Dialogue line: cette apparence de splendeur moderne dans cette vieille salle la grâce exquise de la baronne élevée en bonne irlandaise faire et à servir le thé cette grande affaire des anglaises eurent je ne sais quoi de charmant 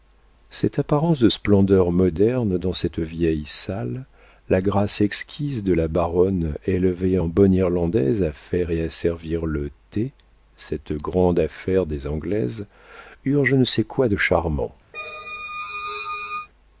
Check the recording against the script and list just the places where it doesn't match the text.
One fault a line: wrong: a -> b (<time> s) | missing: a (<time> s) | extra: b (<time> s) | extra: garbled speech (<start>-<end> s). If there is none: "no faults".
extra: à (8.2 s)